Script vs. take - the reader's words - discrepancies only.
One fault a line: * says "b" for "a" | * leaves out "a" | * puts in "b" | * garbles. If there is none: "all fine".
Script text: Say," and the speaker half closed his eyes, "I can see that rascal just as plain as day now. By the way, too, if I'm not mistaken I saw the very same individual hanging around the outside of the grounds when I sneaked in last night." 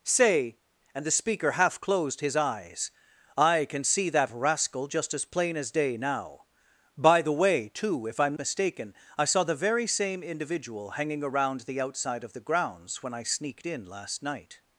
* leaves out "not"